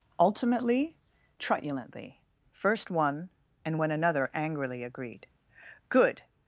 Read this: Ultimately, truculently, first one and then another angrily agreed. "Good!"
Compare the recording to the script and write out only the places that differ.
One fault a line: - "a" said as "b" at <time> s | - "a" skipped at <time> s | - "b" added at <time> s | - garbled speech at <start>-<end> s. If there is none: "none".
- "then" said as "when" at 3.8 s